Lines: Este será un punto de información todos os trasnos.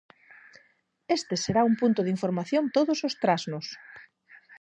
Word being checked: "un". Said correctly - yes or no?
yes